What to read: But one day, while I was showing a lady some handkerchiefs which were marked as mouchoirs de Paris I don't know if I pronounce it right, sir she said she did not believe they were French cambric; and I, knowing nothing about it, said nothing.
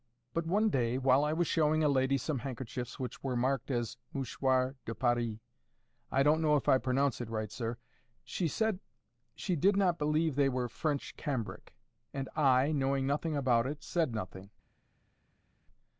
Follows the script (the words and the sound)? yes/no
yes